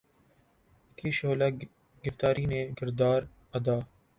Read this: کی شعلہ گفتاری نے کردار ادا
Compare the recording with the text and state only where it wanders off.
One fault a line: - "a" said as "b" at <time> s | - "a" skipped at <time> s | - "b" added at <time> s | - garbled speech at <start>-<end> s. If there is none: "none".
none